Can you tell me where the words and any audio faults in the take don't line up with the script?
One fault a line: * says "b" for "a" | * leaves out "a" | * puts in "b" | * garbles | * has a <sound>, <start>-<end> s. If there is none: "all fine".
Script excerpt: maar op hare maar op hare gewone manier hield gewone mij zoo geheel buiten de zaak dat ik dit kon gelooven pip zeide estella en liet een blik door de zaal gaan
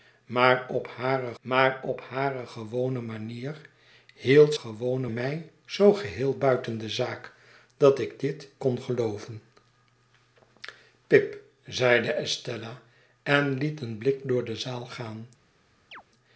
* has a chirp, 15.9-16.0 s